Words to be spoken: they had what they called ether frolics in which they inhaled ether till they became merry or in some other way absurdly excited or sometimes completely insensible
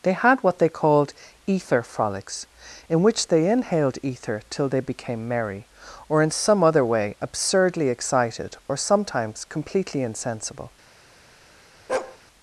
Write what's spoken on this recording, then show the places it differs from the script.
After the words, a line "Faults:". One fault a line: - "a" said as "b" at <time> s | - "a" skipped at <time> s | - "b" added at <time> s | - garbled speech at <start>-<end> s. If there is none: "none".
they had what they called ether frolics in which they inhaled ether till they became merry or in some other way absurdly excited or sometimes completely insensible
Faults:
none